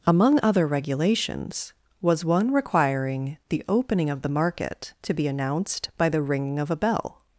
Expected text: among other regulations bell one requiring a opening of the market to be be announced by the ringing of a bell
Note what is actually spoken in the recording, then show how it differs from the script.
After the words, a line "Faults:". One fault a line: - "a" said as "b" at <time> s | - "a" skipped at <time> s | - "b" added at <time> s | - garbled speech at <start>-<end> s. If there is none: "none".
among other regulations was one requiring the opening of the market to be announced by the ringing of a bell
Faults:
- "bell" said as "was" at 2.0 s
- "a" said as "the" at 3.5 s
- "be" skipped at 5.3 s